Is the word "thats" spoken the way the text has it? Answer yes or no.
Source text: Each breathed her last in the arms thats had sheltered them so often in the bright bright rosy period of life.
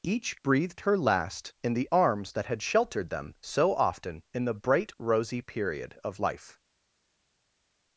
no